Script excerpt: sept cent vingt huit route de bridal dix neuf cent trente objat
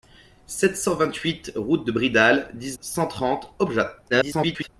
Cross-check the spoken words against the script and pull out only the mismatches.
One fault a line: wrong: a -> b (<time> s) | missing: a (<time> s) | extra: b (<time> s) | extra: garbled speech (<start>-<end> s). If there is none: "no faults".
missing: neuf (2.8 s)
extra: garbled speech (4.1-4.7 s)